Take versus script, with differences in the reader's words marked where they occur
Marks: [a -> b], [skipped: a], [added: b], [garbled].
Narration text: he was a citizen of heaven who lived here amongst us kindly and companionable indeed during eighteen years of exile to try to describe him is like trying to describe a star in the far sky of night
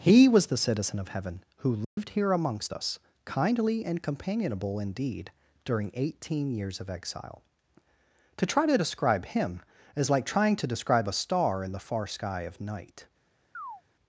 he was [a -> the] citizen of heaven who lived here amongst us kindly and companionable indeed during eighteen years of exile to try to describe him is like trying to describe a star in the far sky of night